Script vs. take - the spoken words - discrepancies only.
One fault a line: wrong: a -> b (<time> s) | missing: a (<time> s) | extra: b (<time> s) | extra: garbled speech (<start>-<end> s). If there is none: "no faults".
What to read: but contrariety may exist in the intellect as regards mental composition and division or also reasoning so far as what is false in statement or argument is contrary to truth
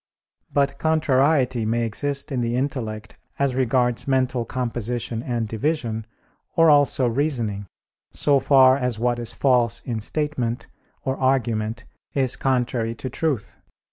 no faults